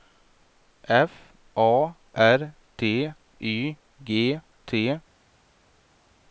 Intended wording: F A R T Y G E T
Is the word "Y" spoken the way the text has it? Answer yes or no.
yes